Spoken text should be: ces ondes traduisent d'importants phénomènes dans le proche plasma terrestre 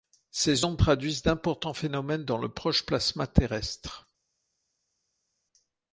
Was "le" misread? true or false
false